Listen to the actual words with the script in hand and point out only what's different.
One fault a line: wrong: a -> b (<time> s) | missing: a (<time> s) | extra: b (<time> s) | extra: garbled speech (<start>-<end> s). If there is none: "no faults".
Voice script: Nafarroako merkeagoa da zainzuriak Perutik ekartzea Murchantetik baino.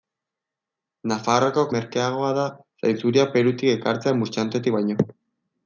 no faults